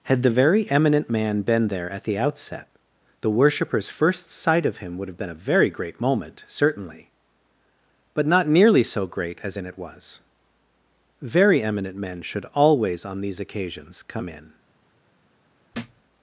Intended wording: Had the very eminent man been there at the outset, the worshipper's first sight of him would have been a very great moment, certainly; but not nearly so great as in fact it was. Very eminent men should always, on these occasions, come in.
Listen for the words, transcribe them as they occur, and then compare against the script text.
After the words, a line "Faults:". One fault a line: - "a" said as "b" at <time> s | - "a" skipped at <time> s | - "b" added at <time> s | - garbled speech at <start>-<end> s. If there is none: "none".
Had the very eminent man been there at the outset, the worshipper's first sight of him would have been a very great moment, certainly; but not nearly so great as in it was. Very eminent men should always, on these occasions, come in.
Faults:
- "fact" skipped at 9.6 s